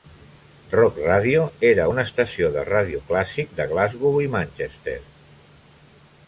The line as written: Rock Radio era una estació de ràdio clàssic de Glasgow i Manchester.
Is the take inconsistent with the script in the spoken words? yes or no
no